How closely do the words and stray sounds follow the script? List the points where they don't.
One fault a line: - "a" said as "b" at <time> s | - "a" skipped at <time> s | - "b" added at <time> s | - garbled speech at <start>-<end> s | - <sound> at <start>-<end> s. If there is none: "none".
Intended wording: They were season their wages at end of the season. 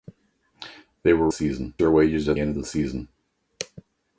none